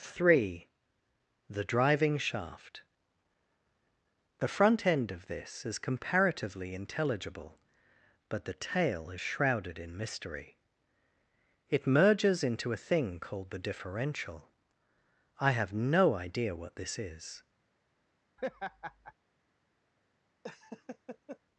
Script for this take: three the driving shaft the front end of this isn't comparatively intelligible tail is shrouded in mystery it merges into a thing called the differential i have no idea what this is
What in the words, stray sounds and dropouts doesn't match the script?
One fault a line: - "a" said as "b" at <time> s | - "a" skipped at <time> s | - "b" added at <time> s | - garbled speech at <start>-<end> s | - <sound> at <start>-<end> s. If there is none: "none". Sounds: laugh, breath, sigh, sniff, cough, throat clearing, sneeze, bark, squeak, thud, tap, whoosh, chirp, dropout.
- "isn't" said as "is" at 5.6 s
- "but the" added at 8.3 s
- laugh at 18.4-19.1 s
- laugh at 20.4-21.4 s